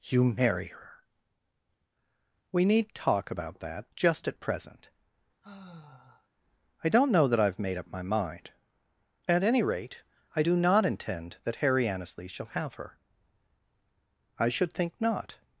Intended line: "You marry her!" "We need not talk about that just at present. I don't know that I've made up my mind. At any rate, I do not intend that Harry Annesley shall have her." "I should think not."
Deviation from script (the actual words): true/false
true